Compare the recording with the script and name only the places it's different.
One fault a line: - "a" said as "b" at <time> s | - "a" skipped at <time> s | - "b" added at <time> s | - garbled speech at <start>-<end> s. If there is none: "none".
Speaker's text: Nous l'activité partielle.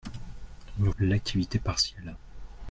none